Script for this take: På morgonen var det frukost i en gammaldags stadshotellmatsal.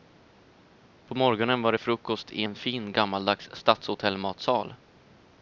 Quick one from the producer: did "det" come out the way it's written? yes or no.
yes